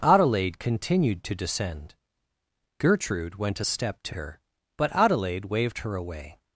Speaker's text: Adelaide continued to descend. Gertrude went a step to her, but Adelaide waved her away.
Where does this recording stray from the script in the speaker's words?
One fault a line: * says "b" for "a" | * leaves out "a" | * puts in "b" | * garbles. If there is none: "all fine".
all fine